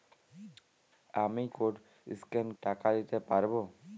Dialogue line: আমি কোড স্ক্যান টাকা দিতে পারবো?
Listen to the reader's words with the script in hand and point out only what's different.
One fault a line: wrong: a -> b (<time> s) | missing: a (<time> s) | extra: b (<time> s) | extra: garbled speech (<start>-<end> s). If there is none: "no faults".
no faults